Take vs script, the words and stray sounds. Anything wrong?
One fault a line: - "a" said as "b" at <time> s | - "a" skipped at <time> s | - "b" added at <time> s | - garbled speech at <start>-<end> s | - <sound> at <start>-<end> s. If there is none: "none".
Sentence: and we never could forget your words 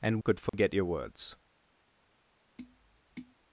- "we never" skipped at 0.2 s
- dropout at 0.5-0.5 s
- tap at 2.6-3.4 s